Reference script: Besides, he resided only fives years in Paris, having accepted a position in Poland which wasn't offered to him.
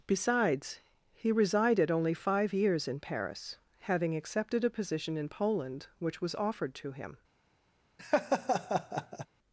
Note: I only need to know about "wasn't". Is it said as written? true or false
false